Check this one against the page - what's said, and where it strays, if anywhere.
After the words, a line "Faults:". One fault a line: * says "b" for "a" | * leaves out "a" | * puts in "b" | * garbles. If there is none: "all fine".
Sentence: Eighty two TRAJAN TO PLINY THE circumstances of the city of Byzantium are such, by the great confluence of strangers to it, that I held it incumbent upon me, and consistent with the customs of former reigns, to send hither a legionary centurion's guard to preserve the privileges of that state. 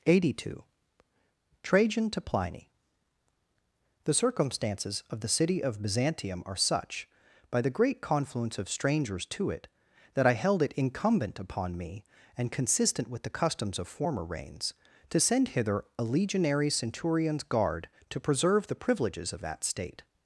Eighty two TRAJAN TO PLINY THE circumstances of the city of Byzantium are such, by the great confluence of strangers to it, that I held it incumbent upon me, and consistent with the customs of former reigns, to send hither a legionary centurion's guard to preserve the privileges of that state.
Faults:
all fine